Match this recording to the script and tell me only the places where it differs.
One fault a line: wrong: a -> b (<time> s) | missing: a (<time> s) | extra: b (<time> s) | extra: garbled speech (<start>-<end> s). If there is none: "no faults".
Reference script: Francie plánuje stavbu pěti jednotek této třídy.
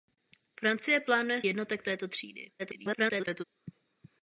missing: stavbu pěti (1.4 s)
extra: garbled speech (2.6-3.4 s)